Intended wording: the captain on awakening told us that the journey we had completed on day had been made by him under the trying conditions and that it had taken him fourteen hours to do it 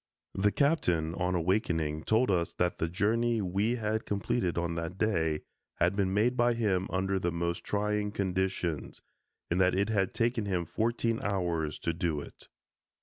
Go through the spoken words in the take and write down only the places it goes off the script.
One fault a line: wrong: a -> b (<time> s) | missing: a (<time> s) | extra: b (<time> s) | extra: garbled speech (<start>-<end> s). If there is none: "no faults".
extra: that (4.7 s)
extra: most (7.3 s)